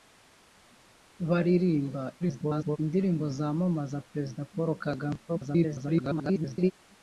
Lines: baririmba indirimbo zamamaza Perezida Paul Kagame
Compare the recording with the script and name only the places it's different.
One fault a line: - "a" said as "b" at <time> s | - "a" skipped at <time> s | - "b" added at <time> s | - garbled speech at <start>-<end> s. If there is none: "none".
- garbled speech at 2.2-2.8 s
- garbled speech at 5.3-6.7 s